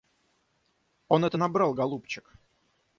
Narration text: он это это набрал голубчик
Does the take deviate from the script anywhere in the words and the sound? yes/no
yes